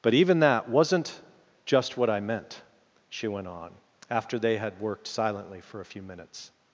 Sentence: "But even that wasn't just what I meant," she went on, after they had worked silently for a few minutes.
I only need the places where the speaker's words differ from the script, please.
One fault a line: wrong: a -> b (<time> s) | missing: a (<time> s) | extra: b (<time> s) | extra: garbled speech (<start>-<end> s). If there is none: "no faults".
no faults